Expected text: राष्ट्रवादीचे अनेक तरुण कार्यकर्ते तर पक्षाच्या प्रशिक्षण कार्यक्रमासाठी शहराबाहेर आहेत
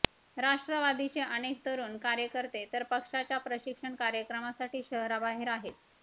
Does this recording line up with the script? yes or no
yes